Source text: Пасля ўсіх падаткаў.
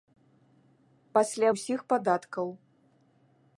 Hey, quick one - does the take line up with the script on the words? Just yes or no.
yes